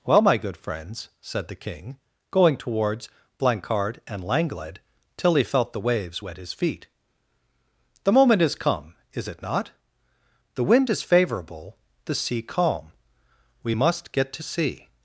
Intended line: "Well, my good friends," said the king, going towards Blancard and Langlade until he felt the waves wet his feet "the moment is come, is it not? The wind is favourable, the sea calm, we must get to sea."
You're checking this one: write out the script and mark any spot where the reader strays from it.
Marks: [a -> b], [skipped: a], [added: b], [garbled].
"Well, my good friends," said the king, going towards Blancard and Langlade [until -> till] he felt the waves wet his feet "the moment is come, is it not? The wind is favourable, the sea calm, we must get to sea."